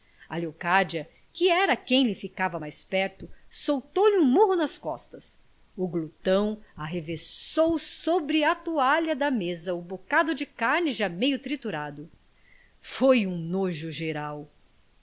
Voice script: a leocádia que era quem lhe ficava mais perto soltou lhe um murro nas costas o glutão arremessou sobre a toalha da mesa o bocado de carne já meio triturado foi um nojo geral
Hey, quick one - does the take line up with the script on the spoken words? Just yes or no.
yes